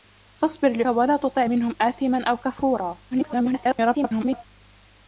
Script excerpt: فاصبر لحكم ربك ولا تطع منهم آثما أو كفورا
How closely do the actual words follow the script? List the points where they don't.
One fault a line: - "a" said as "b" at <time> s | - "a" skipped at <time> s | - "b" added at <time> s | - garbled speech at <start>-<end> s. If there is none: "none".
- "لحكم ربك" skipped at 0.8 s
- garbled speech at 3.1-4.5 s